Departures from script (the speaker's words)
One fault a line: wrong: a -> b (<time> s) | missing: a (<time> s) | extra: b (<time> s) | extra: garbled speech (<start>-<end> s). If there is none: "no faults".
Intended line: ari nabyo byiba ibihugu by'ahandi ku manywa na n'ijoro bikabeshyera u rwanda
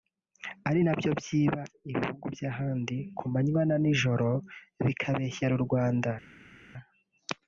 no faults